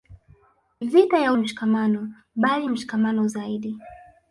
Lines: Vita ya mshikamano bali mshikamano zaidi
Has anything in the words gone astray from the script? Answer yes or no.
no